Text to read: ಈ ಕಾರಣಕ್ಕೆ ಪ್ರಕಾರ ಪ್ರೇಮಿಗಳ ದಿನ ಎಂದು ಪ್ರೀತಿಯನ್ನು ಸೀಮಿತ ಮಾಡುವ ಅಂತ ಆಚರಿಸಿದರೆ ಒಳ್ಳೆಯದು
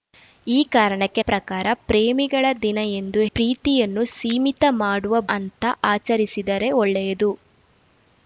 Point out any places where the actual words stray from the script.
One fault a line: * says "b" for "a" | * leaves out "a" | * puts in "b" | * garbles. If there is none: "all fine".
all fine